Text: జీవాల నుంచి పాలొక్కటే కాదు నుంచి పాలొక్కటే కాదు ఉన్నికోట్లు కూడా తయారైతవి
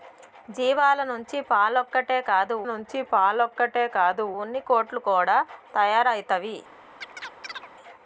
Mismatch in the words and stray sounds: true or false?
true